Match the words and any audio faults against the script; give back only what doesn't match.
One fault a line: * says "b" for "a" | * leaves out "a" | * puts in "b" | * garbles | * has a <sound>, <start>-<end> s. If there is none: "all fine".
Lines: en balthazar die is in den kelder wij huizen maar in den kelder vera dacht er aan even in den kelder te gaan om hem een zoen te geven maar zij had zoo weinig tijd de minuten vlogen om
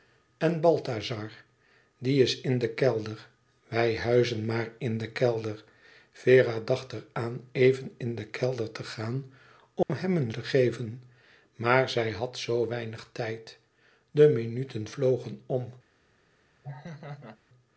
* has a dropout, 9.8-9.9 s
* leaves out "zoen"
* has a laugh, 16.6-17.4 s